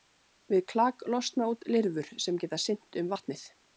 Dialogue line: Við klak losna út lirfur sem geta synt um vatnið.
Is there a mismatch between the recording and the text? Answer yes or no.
no